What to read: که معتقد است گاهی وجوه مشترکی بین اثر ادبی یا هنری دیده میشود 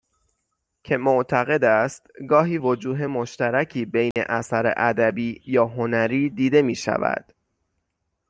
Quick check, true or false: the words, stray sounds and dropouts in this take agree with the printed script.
false